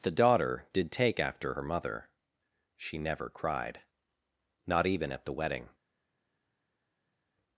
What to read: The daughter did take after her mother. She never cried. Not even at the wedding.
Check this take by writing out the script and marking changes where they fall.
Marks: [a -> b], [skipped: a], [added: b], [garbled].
The daughter did take after her mother. She never cried. Not even at the wedding.